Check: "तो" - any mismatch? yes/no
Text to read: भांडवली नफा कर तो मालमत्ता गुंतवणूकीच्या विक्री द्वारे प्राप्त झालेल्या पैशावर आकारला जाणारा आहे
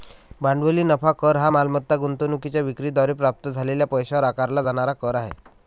yes